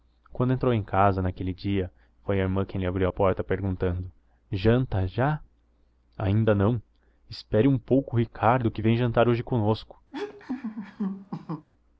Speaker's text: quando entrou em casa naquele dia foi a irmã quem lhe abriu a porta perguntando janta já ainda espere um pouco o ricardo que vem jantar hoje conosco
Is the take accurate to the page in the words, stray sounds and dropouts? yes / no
no